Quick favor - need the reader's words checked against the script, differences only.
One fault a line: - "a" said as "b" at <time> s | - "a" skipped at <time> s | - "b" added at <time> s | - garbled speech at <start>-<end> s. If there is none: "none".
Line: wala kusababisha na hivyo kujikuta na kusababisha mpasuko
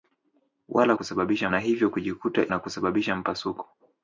none